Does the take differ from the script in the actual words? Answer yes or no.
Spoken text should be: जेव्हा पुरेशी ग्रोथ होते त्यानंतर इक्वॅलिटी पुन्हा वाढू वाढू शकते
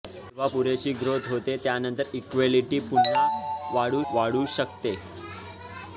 no